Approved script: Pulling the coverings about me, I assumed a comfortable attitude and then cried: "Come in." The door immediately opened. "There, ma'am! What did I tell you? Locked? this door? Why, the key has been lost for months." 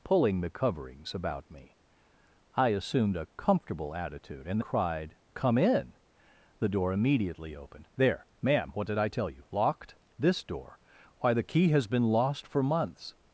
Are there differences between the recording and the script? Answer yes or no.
yes